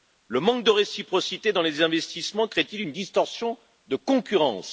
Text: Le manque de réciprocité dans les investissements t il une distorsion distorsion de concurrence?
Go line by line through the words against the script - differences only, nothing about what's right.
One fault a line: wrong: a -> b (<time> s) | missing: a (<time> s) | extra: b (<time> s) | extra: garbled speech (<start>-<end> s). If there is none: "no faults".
extra: crée (2.5 s)
missing: distorsion (3.6 s)